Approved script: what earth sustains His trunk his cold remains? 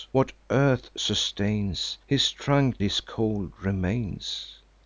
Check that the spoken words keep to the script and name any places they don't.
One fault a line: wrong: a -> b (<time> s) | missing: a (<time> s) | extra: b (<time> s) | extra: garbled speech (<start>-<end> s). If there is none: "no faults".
no faults